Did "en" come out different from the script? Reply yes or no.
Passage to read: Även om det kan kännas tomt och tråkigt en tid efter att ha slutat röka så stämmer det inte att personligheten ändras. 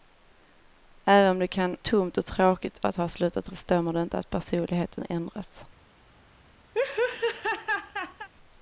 yes